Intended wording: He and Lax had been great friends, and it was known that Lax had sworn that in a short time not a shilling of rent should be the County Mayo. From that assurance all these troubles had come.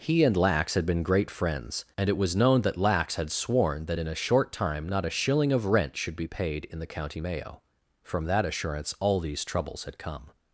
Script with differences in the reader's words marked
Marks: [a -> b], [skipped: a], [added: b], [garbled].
He and Lax had been great friends, and it was known that Lax had sworn that in a short time not a shilling of rent should be [added: paid in] the County Mayo. From that assurance all these troubles had come.